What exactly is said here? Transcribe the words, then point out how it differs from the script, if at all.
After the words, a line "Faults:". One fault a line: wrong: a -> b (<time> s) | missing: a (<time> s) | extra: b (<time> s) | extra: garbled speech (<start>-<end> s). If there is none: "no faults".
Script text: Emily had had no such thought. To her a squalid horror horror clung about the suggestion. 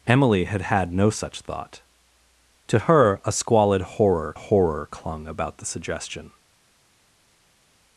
Emily had had no such thought. To her a squalid horror horror clung about the suggestion.
Faults:
no faults